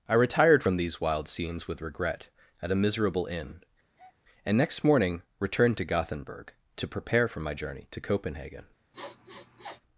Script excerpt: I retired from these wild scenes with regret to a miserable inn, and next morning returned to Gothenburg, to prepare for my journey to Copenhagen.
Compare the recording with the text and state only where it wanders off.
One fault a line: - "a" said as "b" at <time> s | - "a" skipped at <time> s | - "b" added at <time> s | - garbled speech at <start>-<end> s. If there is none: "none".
- "to" said as "at" at 2.6 s